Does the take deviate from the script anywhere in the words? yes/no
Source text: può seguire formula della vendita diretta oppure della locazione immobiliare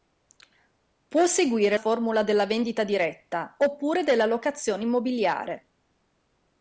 no